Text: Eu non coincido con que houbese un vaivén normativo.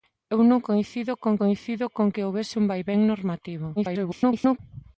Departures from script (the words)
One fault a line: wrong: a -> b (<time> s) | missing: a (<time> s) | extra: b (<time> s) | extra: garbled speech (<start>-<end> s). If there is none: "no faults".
extra: coincido con (1.4 s)
extra: garbled speech (3.8-4.6 s)